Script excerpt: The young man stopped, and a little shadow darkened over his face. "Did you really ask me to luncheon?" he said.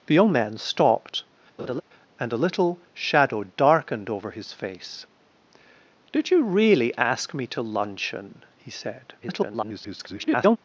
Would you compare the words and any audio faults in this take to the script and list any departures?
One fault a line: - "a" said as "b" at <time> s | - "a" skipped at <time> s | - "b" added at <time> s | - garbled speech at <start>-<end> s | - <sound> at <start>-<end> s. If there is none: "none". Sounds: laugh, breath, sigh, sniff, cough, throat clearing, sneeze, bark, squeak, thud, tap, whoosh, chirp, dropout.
- laugh at 1.6-1.8 s
- garbled speech at 9.2-10.6 s